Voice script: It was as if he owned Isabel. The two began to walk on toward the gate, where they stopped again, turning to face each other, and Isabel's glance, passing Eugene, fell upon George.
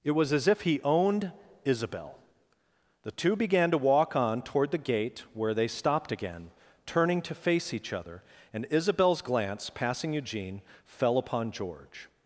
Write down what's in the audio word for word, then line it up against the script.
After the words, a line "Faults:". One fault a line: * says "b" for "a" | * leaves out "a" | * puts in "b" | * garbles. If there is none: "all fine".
It was as if he owned Isabel. The two began to walk on toward the gate, where they stopped again, turning to face each other, and Isabel's glance, passing Eugene, fell upon George.
Faults:
all fine